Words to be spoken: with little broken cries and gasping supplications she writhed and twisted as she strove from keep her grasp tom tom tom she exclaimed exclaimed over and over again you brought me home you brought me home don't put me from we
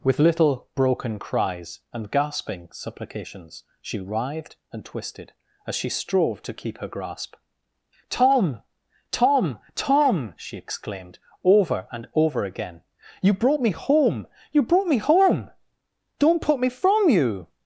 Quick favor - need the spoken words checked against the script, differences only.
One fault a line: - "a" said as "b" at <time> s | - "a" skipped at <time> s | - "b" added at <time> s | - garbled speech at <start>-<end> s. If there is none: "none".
- "from" said as "to" at 6.4 s
- "exclaimed" skipped at 11.2 s
- "we" said as "you" at 17.1 s